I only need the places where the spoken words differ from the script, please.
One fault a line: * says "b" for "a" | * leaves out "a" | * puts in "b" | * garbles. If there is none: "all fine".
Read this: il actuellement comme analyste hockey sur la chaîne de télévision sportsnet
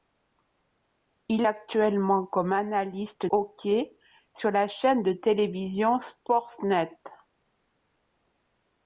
all fine